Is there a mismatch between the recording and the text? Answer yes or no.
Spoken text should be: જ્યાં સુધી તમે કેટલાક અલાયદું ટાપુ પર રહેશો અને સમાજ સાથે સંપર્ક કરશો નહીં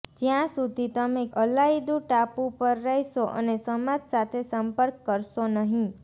yes